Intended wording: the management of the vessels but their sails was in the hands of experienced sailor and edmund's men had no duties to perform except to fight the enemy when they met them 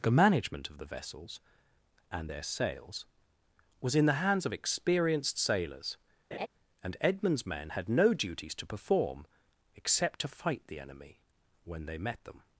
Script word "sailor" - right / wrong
wrong